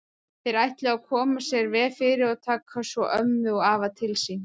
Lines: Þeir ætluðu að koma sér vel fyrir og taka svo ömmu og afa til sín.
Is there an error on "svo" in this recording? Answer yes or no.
no